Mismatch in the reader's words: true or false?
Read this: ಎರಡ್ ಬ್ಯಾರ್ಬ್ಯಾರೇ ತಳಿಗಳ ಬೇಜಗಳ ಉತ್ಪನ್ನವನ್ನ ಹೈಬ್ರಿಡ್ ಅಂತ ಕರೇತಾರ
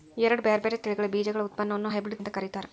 false